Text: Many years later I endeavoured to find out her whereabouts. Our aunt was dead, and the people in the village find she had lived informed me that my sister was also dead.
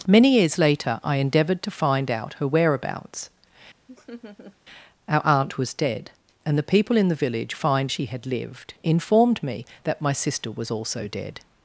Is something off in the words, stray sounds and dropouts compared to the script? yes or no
yes